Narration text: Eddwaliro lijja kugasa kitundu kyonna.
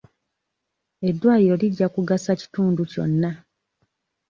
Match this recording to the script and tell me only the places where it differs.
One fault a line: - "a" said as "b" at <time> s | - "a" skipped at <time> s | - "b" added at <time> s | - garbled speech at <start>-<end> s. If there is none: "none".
none